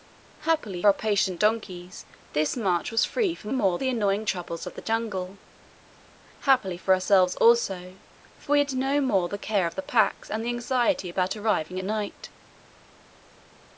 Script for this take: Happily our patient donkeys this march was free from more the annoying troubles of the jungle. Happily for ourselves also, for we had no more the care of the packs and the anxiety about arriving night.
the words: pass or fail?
pass